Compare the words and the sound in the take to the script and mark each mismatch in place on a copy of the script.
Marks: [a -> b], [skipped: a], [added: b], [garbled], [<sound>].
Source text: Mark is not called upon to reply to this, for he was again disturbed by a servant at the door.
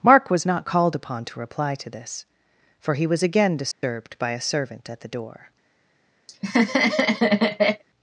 Mark [is -> was] not called upon to reply to this, for he was again disturbed [dropout] by a servant at the door. [laugh]